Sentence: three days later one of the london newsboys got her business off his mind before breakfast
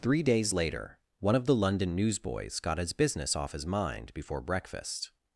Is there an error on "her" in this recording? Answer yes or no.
yes